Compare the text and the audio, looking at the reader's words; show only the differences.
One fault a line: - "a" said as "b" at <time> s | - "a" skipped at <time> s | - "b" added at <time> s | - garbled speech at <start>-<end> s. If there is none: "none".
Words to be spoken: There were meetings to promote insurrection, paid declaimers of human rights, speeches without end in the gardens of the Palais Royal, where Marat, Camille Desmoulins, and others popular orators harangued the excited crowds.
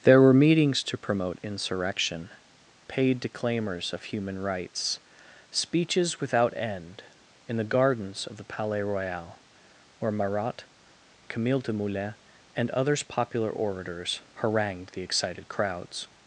none